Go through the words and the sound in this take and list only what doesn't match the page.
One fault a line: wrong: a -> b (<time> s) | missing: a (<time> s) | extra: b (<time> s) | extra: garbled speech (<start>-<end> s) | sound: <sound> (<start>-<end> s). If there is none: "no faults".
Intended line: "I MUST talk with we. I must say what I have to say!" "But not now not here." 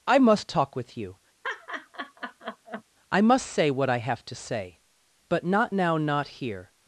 wrong: we -> you (1.0 s)
sound: laugh (1.4-2.8 s)